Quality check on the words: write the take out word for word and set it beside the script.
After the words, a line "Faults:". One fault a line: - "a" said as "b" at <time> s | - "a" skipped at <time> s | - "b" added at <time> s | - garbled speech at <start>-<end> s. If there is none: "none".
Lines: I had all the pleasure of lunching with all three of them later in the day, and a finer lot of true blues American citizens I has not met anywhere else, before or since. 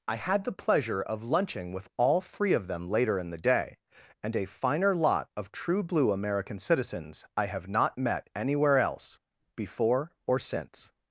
I had the pleasure of lunching with all three of them later in the day, and a finer lot of true blue American citizens I have not met anywhere else, before or since.
Faults:
- "all" skipped at 0.4 s
- "blues" said as "blue" at 5.8 s
- "has" said as "have" at 7.5 s